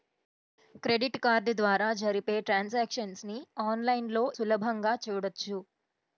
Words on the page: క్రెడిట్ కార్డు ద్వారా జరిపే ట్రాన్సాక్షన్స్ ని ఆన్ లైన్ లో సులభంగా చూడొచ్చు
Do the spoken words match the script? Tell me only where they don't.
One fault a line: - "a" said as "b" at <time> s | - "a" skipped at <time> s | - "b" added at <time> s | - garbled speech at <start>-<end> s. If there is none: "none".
none